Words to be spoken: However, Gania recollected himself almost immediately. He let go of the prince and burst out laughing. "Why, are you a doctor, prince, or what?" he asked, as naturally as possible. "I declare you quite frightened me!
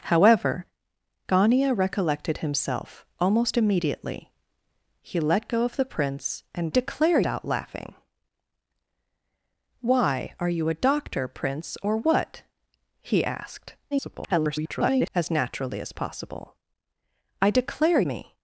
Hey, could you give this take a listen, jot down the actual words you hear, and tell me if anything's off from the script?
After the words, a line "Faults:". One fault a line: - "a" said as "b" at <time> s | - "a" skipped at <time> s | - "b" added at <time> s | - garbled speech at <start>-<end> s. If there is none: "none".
However, Gania recollected himself almost immediately. He let go of the prince and declare out laughing. "Why, are you a doctor, prince, or what?" he asked, [garbled] as naturally as possible. "I declare me!
Faults:
- "burst" said as "declare" at 6.7 s
- garbled speech at 13.9-15.1 s
- "you quite frightened" skipped at 18.0 s